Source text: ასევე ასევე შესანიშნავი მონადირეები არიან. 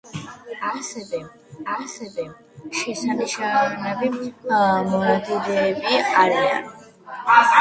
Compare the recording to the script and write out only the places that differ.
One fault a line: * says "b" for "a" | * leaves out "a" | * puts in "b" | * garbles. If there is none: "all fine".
all fine